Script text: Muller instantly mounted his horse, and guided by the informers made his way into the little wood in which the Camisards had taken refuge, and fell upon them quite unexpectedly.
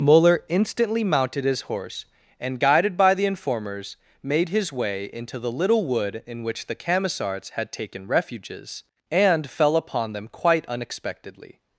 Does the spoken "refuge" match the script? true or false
false